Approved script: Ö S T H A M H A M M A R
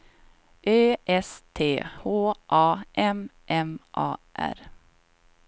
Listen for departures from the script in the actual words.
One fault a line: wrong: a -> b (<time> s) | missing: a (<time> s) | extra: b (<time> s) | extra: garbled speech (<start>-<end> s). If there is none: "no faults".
missing: H A M (3.3 s)